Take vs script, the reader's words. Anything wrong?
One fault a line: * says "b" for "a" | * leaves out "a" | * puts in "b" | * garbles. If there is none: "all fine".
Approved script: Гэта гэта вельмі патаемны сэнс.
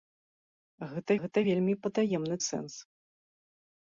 all fine